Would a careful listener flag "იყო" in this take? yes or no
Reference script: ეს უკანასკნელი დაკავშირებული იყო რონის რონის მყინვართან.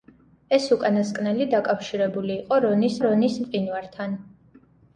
no